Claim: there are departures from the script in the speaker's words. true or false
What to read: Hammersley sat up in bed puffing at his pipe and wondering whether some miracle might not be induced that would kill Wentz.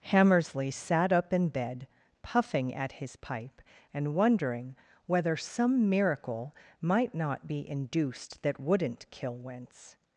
true